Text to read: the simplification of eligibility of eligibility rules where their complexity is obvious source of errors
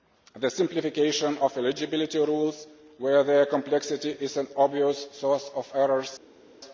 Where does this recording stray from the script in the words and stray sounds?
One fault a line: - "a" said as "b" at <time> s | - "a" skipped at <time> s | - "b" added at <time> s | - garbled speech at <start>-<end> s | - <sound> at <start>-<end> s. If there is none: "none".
- "of eligibility" skipped at 2.2 s
- "an" added at 4.4 s